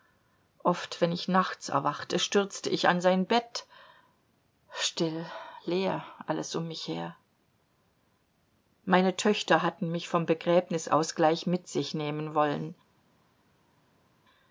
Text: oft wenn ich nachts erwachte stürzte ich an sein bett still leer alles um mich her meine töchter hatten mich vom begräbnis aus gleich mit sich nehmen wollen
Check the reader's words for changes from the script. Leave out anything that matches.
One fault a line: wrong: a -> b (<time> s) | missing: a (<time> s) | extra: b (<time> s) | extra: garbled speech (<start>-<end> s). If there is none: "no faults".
no faults